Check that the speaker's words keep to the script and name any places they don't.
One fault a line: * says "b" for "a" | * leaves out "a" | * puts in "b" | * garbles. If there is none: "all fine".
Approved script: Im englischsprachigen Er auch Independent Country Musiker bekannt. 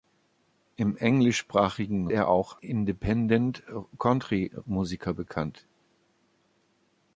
all fine